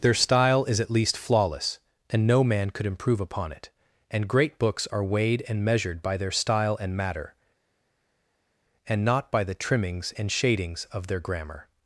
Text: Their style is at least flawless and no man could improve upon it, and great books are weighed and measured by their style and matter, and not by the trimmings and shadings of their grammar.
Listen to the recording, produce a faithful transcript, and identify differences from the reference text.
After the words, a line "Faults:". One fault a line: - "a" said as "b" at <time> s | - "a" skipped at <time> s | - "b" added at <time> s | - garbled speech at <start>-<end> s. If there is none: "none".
Their style is at least flawless and no man could improve upon it, and great books are weighed and measured by their style and matter, and not by the trimmings and shadings of their grammar.
Faults:
none